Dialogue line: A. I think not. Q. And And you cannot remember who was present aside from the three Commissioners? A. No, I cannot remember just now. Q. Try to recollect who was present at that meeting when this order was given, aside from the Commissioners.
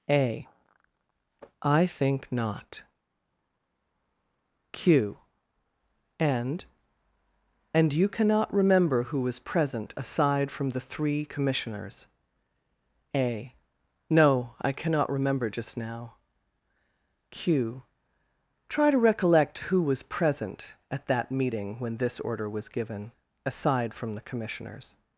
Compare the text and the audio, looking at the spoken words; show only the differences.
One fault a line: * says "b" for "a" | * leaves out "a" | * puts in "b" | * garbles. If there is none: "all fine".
all fine